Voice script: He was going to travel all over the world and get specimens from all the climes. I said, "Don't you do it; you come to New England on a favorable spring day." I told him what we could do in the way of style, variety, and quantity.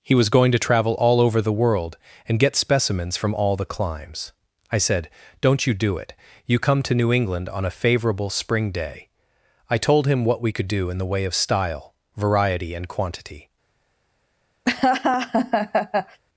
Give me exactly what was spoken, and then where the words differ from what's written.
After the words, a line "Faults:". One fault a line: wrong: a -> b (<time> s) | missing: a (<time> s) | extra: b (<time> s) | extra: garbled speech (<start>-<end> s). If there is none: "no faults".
He was going to travel all over the world and get specimens from all the climes. I said, "Don't you do it; you come to New England on a favorable spring day." I told him what we could do in the way of style, variety, and quantity.
Faults:
no faults